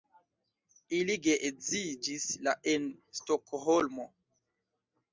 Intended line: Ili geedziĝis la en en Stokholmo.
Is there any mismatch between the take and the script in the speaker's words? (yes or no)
yes